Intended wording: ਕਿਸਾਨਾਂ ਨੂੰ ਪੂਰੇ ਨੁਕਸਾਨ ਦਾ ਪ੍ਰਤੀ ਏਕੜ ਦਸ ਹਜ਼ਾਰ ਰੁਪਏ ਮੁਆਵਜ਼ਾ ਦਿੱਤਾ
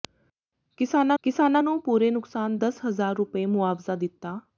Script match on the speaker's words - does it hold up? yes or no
no